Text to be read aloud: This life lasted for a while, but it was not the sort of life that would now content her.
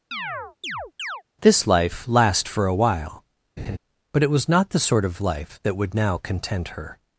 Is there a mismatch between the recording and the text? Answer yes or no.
yes